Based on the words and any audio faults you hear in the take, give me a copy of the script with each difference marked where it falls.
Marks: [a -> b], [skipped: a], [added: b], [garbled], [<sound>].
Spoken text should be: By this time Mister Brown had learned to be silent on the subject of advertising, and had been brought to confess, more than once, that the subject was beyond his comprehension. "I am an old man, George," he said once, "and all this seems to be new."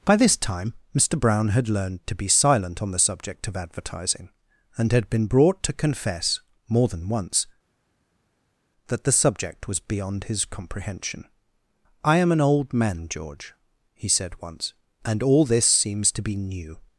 By this time Mister Brown had learned to be silent on the subject of advertising, and had been brought to confess, more than once, that the subject was beyond his comprehension. "I am an old man, George," he said once, "and all this seems to be new."